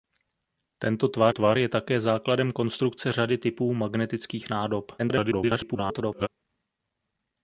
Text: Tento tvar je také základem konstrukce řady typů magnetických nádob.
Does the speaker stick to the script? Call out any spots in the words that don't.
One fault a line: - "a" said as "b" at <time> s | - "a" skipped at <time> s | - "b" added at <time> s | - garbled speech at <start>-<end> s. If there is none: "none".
- "tvar" added at 1.3 s
- garbled speech at 5.0-6.3 s